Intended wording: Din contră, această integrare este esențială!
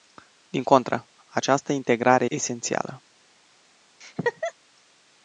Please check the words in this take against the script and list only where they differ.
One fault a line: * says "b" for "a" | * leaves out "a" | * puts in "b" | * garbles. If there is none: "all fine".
* leaves out "este"